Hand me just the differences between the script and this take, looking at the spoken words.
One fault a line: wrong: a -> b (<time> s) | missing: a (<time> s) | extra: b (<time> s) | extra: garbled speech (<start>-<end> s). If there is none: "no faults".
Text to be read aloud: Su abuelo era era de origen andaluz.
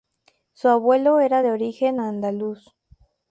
missing: era (1.4 s)